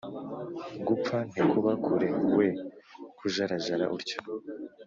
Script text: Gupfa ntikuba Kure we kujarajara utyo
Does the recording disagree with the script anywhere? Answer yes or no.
no